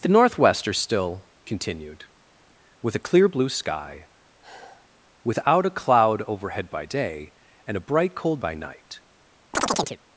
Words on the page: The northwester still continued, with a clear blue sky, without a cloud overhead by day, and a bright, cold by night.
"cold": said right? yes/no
yes